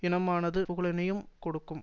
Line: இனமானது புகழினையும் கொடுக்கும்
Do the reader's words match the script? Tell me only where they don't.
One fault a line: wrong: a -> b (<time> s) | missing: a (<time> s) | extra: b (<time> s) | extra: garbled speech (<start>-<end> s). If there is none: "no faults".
no faults